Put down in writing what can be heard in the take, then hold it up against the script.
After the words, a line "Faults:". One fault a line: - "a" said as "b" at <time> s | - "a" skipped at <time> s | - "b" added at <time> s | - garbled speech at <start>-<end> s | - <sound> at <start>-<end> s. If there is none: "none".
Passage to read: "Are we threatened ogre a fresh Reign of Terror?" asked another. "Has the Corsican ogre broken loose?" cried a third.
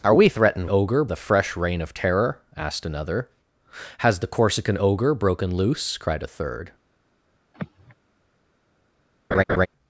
"Are we threatened ogre a fresh Reign of Terror?" asked another. "Has the Corsican ogre broken loose?" cried a third.
Faults:
- sigh at 7.5-7.9 s
- laugh at 9.3-9.7 s